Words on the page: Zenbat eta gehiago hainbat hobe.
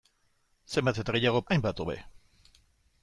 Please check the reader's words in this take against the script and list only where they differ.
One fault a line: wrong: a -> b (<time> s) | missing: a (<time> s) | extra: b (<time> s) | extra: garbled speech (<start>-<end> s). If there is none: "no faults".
no faults